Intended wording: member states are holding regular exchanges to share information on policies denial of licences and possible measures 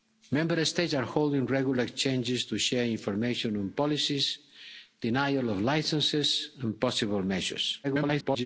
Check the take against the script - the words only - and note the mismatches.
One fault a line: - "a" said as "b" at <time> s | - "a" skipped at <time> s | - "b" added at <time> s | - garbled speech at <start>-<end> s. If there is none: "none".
- garbled speech at 7.8-8.5 s